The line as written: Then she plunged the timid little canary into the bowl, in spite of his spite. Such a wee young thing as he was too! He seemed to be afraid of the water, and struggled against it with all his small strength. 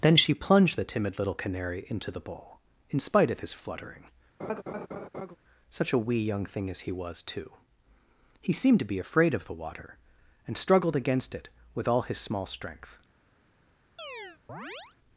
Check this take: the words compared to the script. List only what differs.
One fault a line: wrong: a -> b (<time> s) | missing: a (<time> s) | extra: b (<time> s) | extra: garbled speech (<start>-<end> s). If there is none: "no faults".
wrong: spite -> fluttering (3.5 s)